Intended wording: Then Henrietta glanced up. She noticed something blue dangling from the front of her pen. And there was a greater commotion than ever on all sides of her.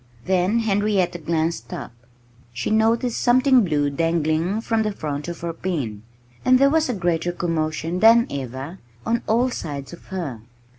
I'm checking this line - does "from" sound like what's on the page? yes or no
yes